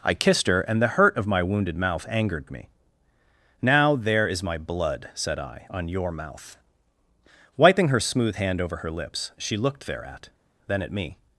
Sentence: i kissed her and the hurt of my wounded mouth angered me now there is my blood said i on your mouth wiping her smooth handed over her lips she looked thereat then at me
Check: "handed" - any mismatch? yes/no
yes